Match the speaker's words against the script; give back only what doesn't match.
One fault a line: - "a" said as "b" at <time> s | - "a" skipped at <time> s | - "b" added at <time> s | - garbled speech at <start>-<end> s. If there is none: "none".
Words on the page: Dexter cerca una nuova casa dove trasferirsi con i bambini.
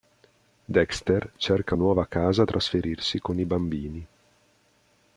- "una" skipped at 1.8 s
- "dove" skipped at 2.4 s